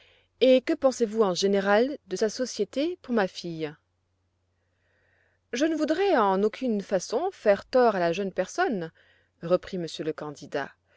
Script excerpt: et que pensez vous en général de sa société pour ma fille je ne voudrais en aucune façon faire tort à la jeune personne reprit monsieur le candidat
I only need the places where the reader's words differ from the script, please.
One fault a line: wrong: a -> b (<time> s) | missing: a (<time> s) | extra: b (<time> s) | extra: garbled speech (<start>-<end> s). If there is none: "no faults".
no faults